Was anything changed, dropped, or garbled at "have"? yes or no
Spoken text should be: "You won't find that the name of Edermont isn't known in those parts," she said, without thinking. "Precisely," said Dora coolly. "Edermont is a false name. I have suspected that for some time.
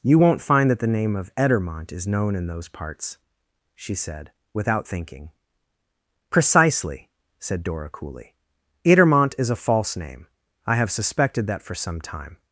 no